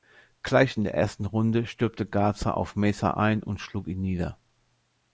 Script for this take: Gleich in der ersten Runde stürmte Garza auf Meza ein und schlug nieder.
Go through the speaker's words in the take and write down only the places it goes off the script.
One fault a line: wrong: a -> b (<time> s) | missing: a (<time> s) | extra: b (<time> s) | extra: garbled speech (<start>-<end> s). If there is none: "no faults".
extra: ihn (3.9 s)